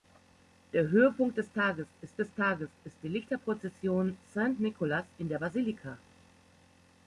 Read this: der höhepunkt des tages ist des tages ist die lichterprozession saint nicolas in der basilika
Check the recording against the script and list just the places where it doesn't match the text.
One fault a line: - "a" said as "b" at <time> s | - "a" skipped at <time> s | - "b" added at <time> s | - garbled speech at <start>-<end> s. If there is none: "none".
none